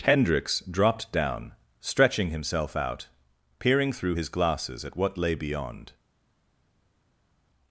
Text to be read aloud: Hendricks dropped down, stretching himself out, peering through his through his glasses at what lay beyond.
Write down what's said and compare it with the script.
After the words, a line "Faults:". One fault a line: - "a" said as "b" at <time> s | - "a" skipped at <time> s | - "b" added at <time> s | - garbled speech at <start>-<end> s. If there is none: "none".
Hendricks dropped down, stretching himself out, peering through his glasses at what lay beyond.
Faults:
- "through his" skipped at 4.3 s